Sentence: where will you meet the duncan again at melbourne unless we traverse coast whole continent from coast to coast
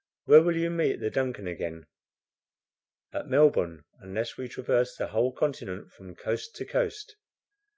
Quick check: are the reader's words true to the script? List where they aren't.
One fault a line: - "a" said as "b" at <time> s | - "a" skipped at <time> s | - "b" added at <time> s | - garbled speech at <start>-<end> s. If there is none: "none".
- "coast" said as "the" at 4.9 s